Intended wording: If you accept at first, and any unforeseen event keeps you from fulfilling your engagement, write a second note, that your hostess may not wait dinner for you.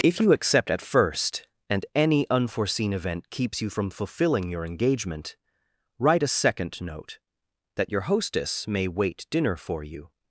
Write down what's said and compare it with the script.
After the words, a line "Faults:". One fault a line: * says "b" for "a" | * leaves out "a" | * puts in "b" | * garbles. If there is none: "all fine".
If you accept at first, and any unforeseen event keeps you from fulfilling your engagement, write a second note, that your hostess may wait dinner for you.
Faults:
* leaves out "not"